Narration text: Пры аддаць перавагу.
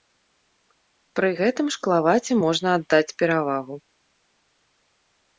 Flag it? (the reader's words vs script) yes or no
yes